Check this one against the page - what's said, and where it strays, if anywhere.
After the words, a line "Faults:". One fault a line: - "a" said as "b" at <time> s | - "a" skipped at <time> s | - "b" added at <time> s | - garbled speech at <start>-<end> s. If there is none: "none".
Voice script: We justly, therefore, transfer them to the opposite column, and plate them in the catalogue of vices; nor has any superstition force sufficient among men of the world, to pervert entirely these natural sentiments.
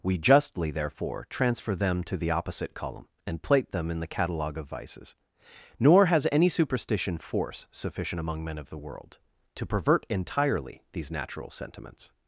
We justly, therefore, transfer them to the opposite column, and plate them in the catalogue of vices; nor has any superstition force sufficient among men of the world, to pervert entirely these natural sentiments.
Faults:
none